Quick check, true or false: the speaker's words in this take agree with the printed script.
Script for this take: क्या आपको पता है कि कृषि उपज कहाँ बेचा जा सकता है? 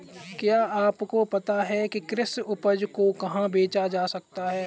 false